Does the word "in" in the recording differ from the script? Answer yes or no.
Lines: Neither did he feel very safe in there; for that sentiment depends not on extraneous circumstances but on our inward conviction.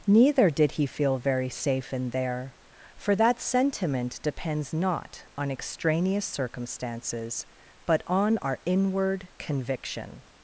no